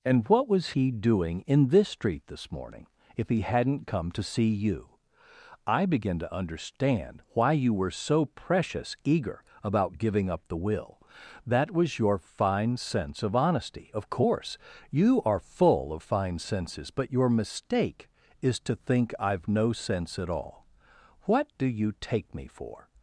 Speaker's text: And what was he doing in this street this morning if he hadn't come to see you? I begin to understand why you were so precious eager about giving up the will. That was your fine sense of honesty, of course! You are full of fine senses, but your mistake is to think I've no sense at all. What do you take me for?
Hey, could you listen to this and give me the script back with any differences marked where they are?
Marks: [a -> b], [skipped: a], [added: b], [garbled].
And what was he doing in this street this morning if he hadn't come to see you? I begin to understand why you were so precious eager about giving up the will. That was your fine sense of honesty, of course! You are full of fine senses, but your mistake is to think I've no sense at all. What do you take me for?